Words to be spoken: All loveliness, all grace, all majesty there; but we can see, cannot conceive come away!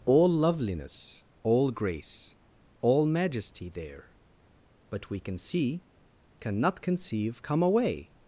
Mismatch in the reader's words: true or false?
false